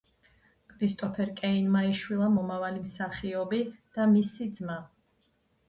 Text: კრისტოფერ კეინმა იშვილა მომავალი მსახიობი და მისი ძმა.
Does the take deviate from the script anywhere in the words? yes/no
no